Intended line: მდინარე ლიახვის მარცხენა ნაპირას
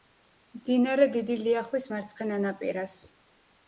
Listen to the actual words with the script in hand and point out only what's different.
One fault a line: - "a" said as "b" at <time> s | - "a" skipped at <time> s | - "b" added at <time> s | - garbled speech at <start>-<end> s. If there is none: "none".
- "დიდი" added at 1.2 s